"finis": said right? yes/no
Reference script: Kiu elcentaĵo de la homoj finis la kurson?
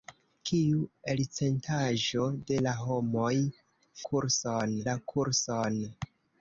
no